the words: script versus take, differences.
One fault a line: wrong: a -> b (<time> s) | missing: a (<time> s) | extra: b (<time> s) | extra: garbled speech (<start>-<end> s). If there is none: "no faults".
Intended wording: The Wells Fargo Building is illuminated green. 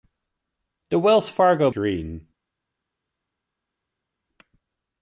missing: Building is illuminated (1.7 s)